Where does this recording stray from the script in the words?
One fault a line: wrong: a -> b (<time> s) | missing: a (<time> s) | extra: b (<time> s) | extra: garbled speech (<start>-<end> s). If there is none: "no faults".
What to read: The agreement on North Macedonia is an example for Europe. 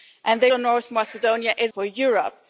missing: agreement (0.5 s)
missing: an example (1.7 s)